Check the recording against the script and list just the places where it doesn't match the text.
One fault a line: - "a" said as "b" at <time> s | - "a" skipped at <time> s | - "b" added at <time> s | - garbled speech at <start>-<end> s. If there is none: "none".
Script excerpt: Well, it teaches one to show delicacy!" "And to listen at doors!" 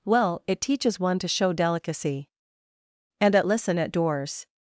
- "to" said as "at" at 3.4 s